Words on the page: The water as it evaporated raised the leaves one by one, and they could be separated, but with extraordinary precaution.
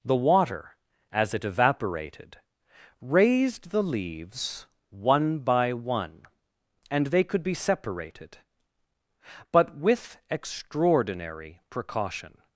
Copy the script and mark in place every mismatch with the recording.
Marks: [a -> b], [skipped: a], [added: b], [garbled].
The water as it evaporated raised the leaves one by one, and they could be separated, but with extraordinary precaution.